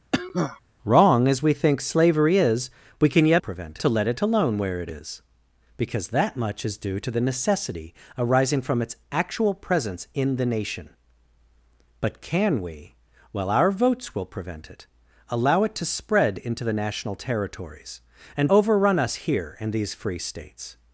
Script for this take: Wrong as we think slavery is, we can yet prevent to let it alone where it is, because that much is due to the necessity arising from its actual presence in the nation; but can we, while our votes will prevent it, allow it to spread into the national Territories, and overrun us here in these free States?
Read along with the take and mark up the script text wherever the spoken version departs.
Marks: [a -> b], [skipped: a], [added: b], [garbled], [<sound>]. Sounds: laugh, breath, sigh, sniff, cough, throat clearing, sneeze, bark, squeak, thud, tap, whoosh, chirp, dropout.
[cough] Wrong as we think slavery is, we can yet prevent to let it alone where it is, because that much is due to the necessity arising from its actual presence in the nation; but can we, while our votes will prevent it, allow it to spread into the national Territories, and overrun us here in these free States?